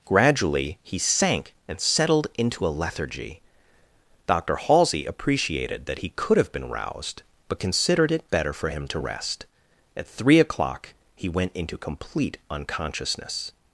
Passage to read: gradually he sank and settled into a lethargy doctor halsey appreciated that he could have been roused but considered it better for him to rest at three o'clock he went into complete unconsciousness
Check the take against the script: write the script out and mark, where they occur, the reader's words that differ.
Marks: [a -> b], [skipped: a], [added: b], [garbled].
gradually he sank and settled into a lethargy doctor halsey appreciated that he could have been roused but considered it better for him to rest at three o'clock he went into complete unconsciousness